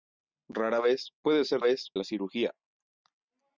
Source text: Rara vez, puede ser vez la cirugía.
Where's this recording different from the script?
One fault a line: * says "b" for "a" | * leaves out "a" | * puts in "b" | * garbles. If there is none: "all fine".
all fine